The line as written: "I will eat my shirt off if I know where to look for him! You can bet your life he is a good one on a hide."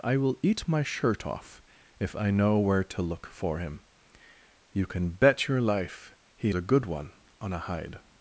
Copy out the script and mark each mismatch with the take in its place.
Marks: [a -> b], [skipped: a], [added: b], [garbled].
"I will eat my shirt off if I know where to look for him! You can bet your life he [skipped: is] a good one on a hide."